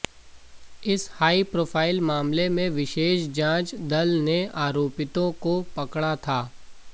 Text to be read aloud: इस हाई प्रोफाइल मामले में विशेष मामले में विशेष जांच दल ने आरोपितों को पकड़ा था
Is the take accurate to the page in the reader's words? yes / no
no